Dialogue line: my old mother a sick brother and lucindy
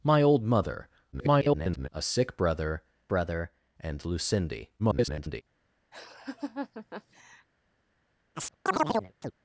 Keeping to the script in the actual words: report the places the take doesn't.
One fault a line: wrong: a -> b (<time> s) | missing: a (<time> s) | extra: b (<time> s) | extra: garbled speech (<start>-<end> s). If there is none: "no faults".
extra: garbled speech (1.1-1.9 s)
extra: brother (3.1 s)
extra: garbled speech (4.8-5.4 s)